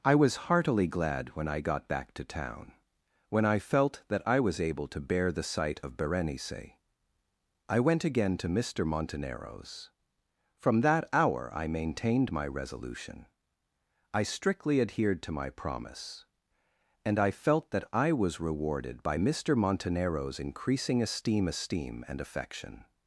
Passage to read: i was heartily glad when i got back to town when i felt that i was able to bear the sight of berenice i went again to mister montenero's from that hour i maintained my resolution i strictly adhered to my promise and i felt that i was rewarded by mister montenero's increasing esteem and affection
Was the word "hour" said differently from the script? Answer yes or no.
no